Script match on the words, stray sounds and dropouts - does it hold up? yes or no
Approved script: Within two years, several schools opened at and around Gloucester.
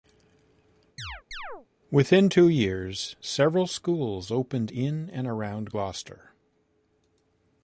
no